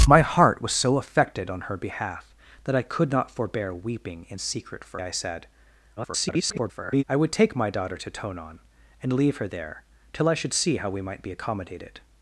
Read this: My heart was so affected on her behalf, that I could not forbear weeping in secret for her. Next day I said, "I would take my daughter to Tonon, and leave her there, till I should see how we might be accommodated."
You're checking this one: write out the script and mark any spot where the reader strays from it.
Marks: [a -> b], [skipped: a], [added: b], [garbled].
My heart was so affected on her behalf, that I could not forbear weeping in secret for [skipped: her. Next day] I said, [garbled] "I would take my daughter to Tonon, and leave her there, till I should see how we might be accommodated."